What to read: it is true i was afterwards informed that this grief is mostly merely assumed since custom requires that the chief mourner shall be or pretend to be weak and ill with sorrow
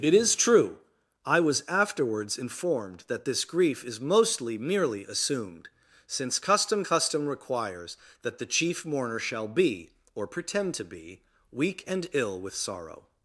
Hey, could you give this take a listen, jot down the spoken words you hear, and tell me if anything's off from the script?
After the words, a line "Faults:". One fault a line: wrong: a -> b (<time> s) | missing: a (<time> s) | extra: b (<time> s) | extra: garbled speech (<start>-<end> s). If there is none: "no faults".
it is true i was afterwards informed that this grief is mostly merely assumed since custom custom requires that the chief mourner shall be or pretend to be weak and ill with sorrow
Faults:
extra: custom (6.8 s)